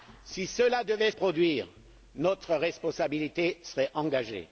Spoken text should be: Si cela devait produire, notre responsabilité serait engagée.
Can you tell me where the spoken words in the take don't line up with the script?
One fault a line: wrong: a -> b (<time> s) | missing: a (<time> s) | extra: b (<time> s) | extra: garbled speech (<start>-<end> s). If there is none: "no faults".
no faults